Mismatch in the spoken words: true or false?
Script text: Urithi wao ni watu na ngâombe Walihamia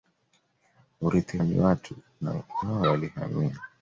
true